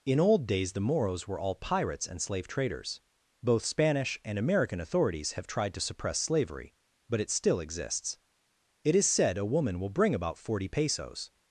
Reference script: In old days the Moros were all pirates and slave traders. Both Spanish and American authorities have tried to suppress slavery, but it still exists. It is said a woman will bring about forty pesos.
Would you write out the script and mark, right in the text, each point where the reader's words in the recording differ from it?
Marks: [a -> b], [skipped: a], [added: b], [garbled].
In old days the Moros were all pirates and slave traders. Both Spanish and American authorities have tried to suppress slavery, but it still exists. It is said a woman will bring about forty pesos.